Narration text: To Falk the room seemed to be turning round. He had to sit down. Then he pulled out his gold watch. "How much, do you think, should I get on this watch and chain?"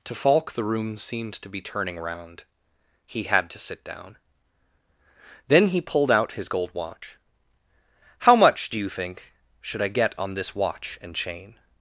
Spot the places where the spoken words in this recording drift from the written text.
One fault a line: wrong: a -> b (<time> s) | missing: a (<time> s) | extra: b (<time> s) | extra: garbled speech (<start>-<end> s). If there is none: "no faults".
no faults